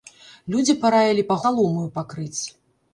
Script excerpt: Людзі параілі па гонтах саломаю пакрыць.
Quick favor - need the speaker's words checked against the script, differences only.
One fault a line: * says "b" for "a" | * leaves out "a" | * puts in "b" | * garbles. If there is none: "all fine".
* leaves out "гонтах"